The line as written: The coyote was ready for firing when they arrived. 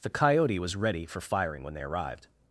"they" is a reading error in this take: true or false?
false